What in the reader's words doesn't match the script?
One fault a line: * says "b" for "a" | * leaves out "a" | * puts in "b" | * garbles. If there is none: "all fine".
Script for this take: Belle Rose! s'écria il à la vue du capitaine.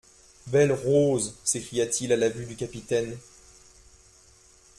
* puts in "t"